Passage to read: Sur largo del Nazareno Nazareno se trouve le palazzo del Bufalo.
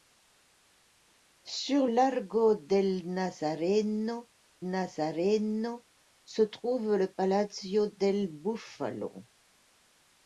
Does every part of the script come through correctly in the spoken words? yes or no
yes